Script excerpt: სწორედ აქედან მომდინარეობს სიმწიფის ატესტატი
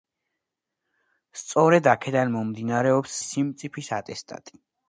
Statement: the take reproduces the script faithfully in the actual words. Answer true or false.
true